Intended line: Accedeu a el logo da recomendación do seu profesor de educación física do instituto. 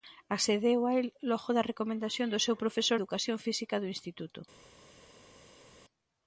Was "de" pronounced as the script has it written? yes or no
no